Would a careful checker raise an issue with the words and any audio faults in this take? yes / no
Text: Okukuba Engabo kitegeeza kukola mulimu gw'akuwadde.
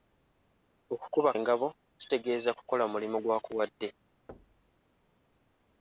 yes